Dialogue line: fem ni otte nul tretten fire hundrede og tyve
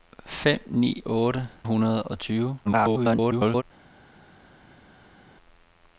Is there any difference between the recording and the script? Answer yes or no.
yes